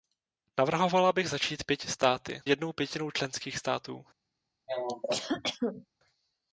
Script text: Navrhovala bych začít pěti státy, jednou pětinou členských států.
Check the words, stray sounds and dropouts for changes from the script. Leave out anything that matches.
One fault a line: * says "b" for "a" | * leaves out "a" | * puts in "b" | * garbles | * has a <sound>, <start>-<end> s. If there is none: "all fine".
* has a cough, 4.7-5.9 s